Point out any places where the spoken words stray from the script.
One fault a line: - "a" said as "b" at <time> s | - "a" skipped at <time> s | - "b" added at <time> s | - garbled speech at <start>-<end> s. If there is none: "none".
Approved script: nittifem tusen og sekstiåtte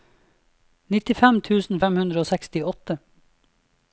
- "fem hundre" added at 1.8 s